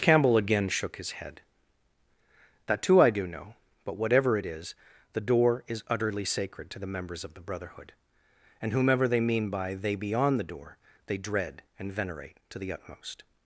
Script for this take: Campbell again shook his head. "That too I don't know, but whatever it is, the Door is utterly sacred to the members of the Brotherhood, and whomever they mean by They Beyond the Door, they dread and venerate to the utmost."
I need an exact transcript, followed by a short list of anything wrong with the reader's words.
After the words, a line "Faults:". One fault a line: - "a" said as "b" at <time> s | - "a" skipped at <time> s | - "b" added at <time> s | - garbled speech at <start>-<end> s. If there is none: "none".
Campbell again shook his head. "That too I do know, but whatever it is, the Door is utterly sacred to the members of the Brotherhood, and whomever they mean by They Beyond the Door, they dread and venerate to the utmost."
Faults:
- "don't" said as "do" at 3.1 s